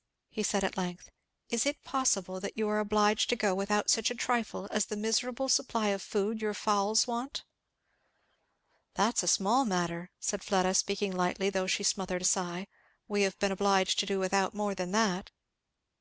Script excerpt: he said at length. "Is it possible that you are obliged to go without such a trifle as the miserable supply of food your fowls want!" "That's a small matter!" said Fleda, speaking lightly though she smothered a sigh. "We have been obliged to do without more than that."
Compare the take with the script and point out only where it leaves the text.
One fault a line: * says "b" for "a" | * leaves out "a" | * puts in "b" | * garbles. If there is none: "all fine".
all fine